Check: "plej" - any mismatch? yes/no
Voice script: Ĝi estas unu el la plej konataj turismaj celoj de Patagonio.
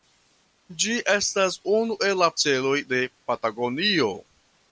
yes